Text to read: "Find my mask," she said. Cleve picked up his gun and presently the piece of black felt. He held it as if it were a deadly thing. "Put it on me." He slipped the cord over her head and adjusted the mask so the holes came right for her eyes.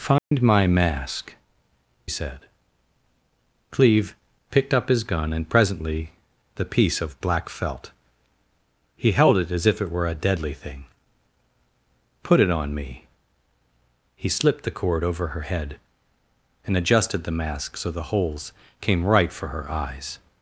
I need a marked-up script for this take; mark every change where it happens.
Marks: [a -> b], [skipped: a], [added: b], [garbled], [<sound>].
"Find [dropout] my mask," [skipped: she] said. Cleve picked up his gun and presently the piece of black felt. He held it as if it were a deadly thing. "Put it on me." He slipped the cord over her head and adjusted the mask so the holes came right for her eyes.